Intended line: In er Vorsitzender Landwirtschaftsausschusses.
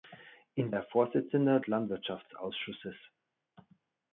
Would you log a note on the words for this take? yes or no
no